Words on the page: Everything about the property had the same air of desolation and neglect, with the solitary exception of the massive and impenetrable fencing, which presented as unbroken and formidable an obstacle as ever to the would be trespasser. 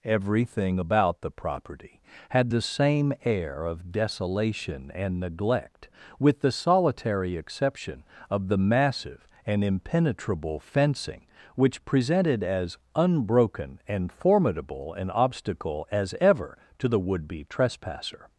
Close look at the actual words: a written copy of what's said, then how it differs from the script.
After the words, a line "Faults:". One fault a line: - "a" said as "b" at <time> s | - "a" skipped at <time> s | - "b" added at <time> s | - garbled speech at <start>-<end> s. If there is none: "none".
Everything about the property had the same air of desolation and neglect, with the solitary exception of the massive and impenetrable fencing, which presented as unbroken and formidable an obstacle as ever to the would be trespasser.
Faults:
none